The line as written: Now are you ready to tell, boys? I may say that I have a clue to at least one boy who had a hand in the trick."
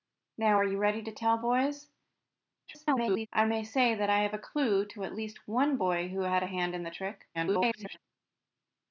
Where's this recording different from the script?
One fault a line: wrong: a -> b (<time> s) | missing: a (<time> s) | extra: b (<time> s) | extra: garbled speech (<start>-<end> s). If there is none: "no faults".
extra: garbled speech (2.7-3.3 s)
extra: garbled speech (7.3-8.0 s)